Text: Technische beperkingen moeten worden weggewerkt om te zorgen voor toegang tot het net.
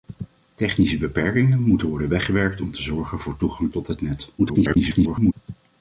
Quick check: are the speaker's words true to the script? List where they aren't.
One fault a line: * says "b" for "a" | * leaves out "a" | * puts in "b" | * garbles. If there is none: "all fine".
* garbles